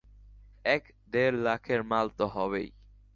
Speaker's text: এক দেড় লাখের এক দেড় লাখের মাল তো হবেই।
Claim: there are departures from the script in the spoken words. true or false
true